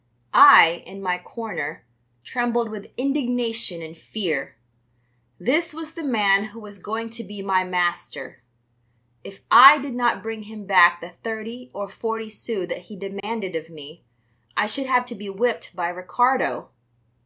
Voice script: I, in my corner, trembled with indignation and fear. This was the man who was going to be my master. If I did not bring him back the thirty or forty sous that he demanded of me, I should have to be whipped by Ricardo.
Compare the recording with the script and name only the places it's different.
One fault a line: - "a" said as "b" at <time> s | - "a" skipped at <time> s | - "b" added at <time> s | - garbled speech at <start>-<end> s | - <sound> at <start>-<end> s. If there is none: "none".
- dropout at 13.2-13.2 s